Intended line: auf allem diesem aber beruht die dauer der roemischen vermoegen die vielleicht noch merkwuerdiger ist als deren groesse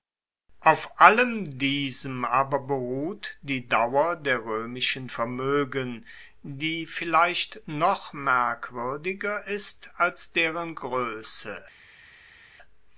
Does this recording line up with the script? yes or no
yes